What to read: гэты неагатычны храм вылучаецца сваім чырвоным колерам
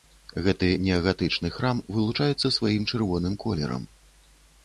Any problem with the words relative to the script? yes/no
no